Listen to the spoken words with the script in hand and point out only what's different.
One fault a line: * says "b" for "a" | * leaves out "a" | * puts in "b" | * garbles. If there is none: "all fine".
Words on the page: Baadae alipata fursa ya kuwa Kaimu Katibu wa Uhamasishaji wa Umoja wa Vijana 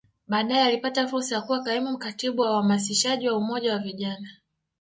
all fine